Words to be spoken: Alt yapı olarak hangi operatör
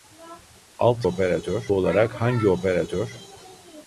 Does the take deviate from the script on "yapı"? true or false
true